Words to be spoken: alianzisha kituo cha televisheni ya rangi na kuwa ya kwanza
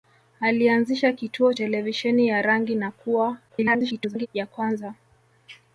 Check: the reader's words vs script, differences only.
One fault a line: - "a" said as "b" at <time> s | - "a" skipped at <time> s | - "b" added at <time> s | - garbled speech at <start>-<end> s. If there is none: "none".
- "cha" skipped at 1.5 s
- garbled speech at 3.5-4.3 s